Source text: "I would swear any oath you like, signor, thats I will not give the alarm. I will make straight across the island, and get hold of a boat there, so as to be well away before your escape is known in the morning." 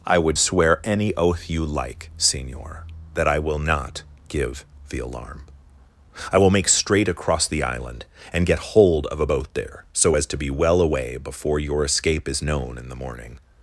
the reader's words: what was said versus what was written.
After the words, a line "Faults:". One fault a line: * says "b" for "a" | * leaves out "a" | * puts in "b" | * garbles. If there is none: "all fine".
"I would swear any oath you like, signor, that I will not give the alarm. I will make straight across the island, and get hold of a boat there, so as to be well away before your escape is known in the morning."
Faults:
* says "that" for "thats"